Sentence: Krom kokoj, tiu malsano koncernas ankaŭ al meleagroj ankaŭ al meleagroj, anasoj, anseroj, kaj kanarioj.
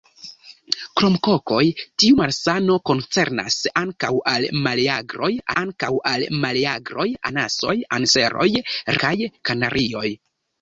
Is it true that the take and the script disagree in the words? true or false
false